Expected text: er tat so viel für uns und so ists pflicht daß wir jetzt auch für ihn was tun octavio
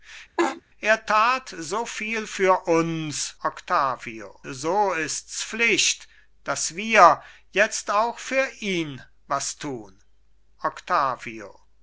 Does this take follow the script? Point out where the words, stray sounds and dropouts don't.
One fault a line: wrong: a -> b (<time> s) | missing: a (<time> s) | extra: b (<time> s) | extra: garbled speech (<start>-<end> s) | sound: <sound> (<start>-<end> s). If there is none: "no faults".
sound: laugh (0.4-0.6 s)
wrong: und -> octavio (3.4 s)